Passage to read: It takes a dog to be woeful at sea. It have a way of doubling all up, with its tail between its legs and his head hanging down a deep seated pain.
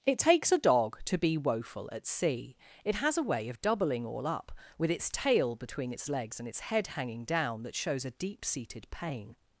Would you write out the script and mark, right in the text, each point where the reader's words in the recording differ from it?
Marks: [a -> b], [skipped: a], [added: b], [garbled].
It takes a dog to be woeful at sea. It [have -> has] a way of doubling all up, with its tail between its legs and [his -> its] head hanging down [added: that shows] a deep seated pain.